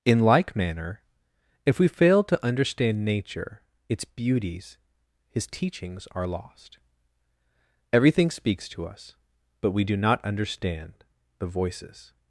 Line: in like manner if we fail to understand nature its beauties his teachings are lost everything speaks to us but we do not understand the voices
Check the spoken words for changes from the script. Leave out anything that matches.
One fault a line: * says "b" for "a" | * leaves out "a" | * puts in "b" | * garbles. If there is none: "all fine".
all fine